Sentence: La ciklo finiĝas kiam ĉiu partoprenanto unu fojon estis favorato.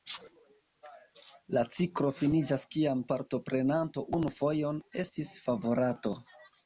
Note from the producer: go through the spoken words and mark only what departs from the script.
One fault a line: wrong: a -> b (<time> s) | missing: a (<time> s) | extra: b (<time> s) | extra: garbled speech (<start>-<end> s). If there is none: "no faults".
missing: ĉiu (3.0 s)